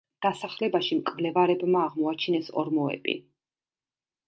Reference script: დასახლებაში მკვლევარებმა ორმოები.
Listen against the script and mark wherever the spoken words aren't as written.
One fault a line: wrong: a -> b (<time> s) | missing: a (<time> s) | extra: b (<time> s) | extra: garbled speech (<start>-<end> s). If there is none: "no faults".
extra: აღმოაჩინეს (1.9 s)